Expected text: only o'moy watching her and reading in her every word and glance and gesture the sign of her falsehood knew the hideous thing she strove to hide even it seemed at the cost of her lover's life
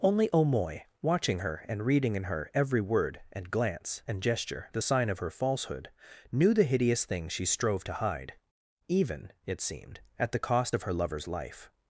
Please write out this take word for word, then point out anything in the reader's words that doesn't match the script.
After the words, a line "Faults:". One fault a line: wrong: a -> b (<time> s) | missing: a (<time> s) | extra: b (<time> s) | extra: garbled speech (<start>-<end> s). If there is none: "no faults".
only o'moy watching her and reading in her every word and glance and gesture the sign of her falsehood knew the hideous thing she strove to hide even it seemed at the cost of her lover's life
Faults:
no faults